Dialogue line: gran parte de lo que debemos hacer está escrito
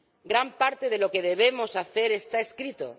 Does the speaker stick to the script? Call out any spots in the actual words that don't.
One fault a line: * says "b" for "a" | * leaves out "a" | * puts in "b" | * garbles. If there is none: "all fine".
all fine